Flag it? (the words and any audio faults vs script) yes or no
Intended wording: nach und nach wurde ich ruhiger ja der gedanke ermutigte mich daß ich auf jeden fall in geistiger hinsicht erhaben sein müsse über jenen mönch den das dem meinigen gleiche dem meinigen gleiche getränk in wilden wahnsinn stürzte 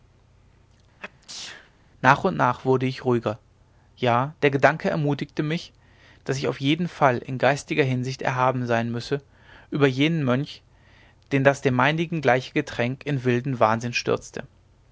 yes